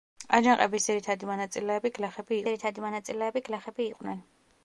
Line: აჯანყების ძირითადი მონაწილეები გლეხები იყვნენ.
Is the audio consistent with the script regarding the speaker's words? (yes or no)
no